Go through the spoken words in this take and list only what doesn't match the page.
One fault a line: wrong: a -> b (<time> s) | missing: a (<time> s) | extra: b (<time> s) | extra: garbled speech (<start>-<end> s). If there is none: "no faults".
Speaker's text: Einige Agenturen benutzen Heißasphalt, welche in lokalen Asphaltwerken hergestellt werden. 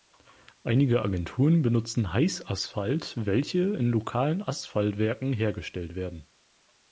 no faults